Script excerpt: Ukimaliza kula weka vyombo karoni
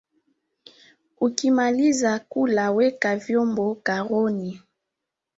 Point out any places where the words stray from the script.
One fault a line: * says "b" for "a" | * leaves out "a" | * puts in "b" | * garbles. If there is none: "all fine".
all fine